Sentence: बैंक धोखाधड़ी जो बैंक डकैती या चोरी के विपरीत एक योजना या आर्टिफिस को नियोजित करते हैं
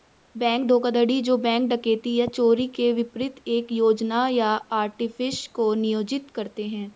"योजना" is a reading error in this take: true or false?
false